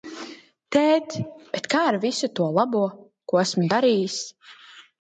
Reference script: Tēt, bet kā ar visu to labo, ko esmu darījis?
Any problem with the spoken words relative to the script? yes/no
no